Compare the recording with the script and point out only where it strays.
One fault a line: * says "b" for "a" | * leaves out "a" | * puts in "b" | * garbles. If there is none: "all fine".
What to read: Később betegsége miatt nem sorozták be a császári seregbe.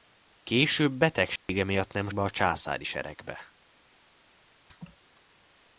* leaves out "sorozták"